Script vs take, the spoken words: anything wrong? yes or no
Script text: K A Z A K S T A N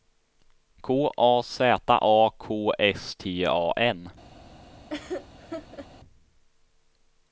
no